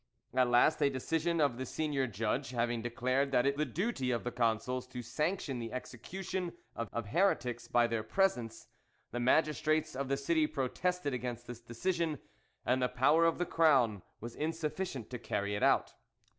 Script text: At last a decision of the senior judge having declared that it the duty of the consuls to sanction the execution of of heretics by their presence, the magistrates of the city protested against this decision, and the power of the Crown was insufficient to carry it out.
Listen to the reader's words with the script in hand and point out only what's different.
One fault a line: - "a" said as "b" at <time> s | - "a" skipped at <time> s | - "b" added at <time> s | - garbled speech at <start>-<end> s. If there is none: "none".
none